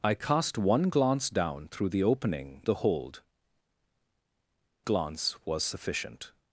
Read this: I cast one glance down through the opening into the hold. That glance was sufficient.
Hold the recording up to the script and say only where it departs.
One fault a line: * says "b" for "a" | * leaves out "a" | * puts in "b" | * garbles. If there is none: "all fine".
* leaves out "into"
* leaves out "That"